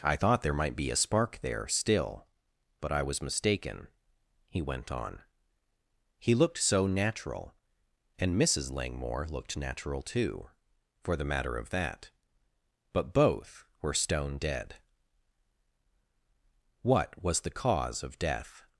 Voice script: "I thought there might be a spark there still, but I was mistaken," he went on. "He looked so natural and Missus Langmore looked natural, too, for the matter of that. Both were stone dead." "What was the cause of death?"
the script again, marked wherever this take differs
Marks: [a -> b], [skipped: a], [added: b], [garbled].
"I thought there might be a spark there still, but I was mistaken," he went on. "He looked so natural and Missus Langmore looked natural, too, for the matter of that. [added: But] Both were stone dead." "What was the cause of death?"